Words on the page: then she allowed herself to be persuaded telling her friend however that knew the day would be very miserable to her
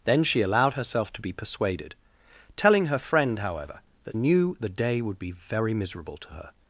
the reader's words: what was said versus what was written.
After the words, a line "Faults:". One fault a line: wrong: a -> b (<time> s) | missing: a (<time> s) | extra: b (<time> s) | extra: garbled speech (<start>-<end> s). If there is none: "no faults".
then she allowed herself to be persuaded telling her friend however that knew the day would be very miserable to her
Faults:
no faults